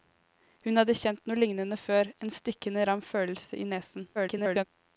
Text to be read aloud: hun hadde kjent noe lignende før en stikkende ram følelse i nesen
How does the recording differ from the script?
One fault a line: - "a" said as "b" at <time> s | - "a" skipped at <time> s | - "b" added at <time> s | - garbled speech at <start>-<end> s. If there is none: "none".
- garbled speech at 4.1-4.6 s